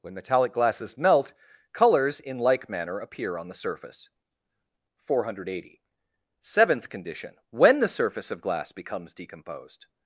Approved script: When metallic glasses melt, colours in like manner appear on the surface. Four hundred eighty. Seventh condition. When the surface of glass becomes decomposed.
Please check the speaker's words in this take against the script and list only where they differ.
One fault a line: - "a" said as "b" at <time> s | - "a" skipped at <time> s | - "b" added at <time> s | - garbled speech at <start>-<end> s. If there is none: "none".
none